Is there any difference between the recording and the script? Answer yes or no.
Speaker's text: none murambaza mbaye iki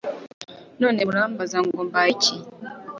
yes